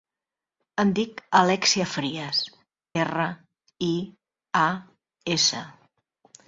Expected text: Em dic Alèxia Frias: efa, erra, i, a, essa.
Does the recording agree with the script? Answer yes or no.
no